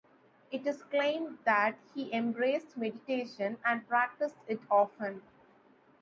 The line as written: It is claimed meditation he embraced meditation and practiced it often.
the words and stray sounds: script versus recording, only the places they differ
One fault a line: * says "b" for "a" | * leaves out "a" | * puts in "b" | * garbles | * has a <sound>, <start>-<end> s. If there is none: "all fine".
* says "that" for "meditation"